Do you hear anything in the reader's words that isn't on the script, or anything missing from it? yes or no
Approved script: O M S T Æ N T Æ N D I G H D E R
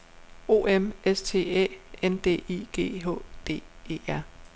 yes